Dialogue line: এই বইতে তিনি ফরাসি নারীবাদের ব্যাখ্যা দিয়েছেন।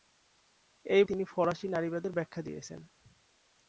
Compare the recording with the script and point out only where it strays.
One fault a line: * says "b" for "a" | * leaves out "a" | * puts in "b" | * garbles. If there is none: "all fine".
* leaves out "বইতে"